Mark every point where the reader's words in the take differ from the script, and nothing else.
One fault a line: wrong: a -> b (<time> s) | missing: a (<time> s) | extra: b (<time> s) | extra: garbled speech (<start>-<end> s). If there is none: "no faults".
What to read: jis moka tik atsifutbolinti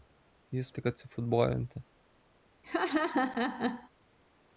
missing: moka (0.7 s)